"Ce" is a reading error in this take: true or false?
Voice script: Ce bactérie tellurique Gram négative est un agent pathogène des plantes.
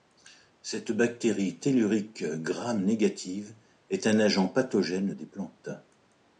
true